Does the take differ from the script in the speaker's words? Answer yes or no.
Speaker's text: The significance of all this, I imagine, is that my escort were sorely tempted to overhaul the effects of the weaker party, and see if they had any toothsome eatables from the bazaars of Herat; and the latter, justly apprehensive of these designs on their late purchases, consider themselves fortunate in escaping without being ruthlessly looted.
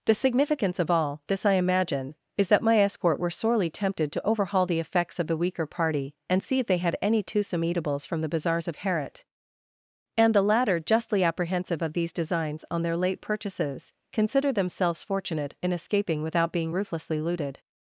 no